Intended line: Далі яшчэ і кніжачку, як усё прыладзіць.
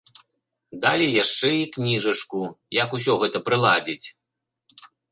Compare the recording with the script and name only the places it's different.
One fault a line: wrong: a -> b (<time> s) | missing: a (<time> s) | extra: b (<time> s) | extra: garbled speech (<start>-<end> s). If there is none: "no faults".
extra: гэта (3.3 s)